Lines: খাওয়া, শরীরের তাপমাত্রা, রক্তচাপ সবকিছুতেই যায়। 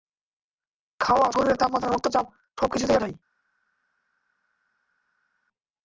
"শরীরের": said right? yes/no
yes